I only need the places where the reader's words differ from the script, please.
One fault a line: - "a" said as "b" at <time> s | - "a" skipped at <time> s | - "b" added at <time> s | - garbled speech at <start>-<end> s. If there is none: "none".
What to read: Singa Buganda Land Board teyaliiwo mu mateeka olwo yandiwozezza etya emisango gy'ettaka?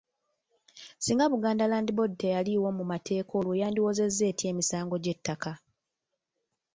none